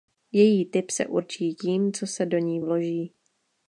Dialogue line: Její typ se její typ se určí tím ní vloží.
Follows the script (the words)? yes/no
no